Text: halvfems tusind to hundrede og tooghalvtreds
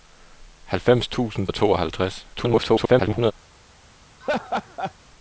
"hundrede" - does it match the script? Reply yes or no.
no